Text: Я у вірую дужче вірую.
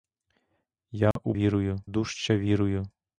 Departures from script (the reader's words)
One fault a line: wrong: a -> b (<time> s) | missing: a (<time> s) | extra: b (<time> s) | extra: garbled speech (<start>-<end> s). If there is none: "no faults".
no faults